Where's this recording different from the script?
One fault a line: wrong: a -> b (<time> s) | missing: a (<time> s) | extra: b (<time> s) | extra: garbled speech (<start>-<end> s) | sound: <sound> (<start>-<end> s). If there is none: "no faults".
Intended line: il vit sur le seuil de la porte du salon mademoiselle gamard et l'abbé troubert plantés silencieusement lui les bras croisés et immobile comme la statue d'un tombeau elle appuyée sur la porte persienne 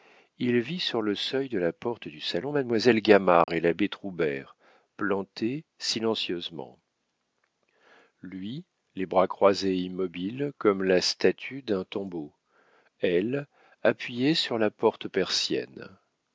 sound: dropout (3.4-3.5 s)